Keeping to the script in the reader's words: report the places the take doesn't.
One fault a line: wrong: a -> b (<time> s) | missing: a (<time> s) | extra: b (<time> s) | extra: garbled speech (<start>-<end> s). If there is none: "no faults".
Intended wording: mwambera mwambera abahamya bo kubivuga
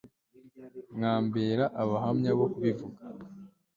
missing: mwambera (1.6 s)